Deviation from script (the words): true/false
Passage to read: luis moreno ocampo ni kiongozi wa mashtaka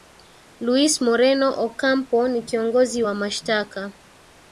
false